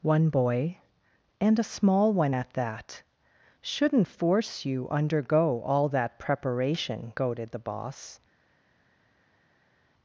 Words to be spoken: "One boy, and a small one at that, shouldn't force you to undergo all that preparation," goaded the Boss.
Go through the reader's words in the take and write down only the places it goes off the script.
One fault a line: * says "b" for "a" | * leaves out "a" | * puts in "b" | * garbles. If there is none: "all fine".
* leaves out "to"